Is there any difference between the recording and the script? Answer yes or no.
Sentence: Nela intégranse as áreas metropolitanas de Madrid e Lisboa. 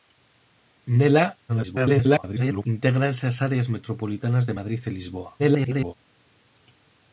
yes